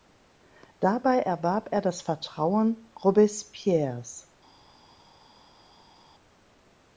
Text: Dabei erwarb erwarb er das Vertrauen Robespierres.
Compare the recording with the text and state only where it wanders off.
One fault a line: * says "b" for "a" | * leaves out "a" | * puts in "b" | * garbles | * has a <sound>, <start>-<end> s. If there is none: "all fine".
* leaves out "erwarb"